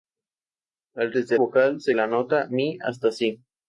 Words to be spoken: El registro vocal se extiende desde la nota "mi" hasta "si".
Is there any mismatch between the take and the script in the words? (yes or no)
yes